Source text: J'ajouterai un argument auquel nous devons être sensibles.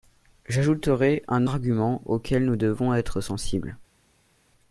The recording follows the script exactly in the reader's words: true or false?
true